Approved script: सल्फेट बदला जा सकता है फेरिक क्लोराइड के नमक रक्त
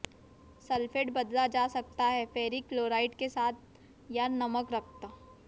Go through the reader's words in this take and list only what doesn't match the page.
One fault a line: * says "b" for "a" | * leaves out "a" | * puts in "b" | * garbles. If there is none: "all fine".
* puts in "साथ या"